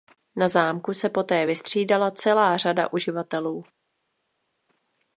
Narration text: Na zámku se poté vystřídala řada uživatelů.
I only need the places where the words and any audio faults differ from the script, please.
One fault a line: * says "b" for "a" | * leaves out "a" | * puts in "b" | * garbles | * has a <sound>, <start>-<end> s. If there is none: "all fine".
* puts in "celá"